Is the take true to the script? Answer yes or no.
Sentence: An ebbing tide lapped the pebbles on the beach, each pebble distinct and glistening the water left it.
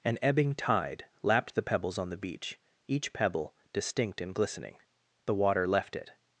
yes